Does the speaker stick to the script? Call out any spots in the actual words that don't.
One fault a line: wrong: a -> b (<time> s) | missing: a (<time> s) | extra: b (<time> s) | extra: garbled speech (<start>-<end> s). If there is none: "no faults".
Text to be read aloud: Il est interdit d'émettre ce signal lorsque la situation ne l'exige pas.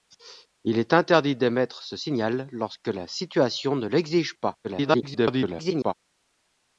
extra: garbled speech (4.6-5.9 s)